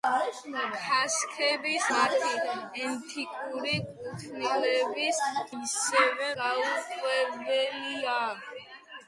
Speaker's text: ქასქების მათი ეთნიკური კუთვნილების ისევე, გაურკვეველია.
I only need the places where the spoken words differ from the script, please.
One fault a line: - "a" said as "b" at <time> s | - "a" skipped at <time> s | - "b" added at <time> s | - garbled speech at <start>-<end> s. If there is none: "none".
none